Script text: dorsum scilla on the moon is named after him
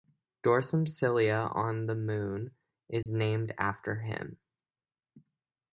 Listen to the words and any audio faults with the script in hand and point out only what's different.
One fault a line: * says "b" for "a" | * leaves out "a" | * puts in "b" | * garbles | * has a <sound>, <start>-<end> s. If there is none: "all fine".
* has a dropout, 3.0-3.1 s